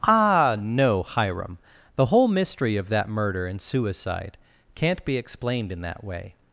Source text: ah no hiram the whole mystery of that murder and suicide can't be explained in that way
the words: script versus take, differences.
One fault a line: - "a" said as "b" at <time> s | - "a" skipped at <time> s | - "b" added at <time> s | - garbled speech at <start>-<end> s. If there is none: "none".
none